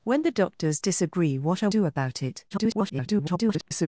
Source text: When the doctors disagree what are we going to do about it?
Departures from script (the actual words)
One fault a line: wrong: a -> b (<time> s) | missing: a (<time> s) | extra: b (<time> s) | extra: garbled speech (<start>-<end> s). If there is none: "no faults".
missing: we going to (1.7 s)
extra: garbled speech (2.5-3.9 s)